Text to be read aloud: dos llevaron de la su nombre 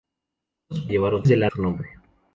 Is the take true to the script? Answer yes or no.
yes